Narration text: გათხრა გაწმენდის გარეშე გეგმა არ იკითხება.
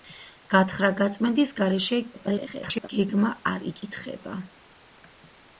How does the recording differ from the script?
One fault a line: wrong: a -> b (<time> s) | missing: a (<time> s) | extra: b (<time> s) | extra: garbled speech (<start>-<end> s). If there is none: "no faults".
extra: garbled speech (2.1-2.9 s)